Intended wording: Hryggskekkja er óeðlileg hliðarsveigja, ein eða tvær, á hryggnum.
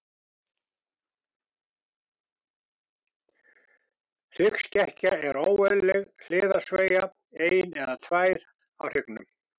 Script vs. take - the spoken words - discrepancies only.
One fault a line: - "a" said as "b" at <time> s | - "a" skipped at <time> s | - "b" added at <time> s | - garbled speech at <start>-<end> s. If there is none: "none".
none